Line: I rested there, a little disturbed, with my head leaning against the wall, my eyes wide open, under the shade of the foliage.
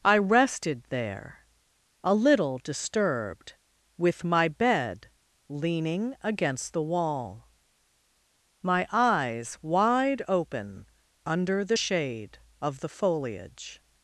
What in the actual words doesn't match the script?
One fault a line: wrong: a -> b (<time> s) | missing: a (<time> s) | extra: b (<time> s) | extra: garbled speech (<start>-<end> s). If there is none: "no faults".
wrong: head -> bed (4.5 s)